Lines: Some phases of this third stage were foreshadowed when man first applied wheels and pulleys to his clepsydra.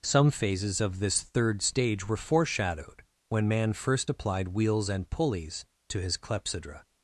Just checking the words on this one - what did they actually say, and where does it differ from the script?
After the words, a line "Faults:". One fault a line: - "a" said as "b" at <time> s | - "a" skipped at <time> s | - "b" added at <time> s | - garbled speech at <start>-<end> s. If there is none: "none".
Some phases of this third stage were foreshadowed when man first applied wheels and pulleys to his clepsydra.
Faults:
none